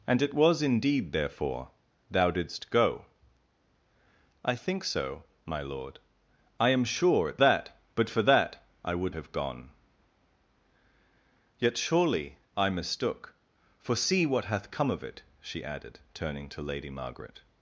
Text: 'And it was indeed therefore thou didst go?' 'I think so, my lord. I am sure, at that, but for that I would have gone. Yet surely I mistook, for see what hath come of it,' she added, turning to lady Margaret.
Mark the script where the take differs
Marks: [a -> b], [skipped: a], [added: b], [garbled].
'And it was indeed therefore thou didst go?' 'I think so, my lord. I am sure, at that, but for that I would have gone. Yet surely I mistook, for see what hath come of it,' she added, turning to lady Margaret.